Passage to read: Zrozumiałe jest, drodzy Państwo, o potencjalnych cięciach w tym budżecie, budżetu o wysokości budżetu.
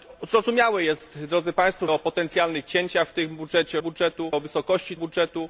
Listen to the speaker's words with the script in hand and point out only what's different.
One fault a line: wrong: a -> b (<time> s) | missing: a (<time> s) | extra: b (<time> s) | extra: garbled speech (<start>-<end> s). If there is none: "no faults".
no faults